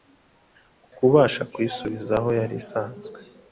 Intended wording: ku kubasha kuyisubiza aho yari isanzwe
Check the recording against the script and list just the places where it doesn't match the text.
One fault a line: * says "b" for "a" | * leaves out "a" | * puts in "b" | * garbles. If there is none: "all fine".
all fine